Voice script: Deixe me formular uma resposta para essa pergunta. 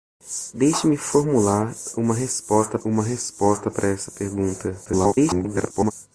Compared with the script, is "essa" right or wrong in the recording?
right